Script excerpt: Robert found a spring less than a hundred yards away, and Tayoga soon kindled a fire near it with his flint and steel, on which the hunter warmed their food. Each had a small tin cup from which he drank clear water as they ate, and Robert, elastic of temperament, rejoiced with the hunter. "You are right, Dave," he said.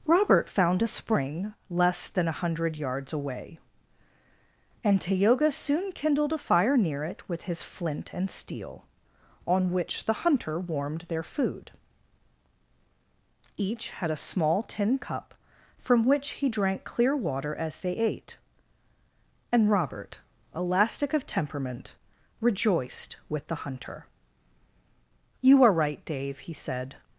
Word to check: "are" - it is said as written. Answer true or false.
true